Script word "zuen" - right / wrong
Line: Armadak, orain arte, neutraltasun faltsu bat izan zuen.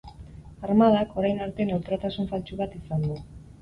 wrong